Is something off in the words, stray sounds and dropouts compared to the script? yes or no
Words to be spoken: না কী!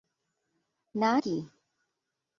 no